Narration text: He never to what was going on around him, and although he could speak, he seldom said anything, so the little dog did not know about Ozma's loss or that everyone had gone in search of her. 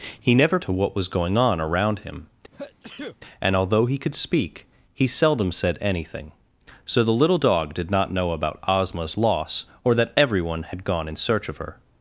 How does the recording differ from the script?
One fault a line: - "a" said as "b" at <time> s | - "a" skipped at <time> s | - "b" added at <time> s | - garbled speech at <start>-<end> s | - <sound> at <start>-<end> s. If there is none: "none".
- sneeze at 2.5-3.2 s